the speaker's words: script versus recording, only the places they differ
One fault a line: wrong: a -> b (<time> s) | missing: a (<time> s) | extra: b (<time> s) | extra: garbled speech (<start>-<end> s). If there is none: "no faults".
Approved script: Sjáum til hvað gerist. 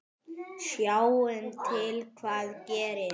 no faults